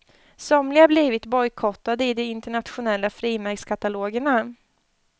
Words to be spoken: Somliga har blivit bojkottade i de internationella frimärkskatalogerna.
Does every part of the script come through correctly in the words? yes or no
yes